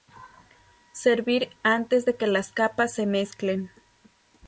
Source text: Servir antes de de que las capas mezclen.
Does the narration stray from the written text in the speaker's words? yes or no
yes